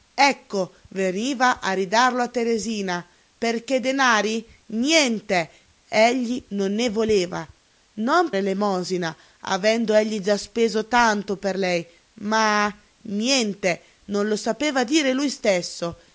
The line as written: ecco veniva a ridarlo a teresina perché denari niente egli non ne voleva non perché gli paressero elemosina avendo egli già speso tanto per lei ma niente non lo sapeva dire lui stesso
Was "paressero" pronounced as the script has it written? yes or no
no